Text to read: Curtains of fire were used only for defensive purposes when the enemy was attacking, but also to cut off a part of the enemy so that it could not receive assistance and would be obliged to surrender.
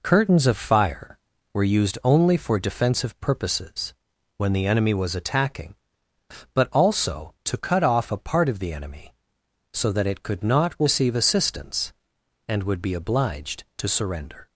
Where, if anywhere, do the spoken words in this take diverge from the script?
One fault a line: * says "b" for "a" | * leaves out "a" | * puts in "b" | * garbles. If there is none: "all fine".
all fine